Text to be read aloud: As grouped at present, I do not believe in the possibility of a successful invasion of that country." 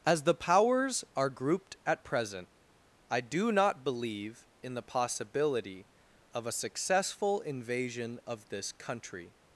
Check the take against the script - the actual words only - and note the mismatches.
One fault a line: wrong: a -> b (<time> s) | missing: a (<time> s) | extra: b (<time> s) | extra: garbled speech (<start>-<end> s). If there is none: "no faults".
extra: the Powers are (0.2 s)
wrong: that -> this (8.5 s)